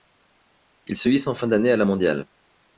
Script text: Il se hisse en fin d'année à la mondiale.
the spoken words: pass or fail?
pass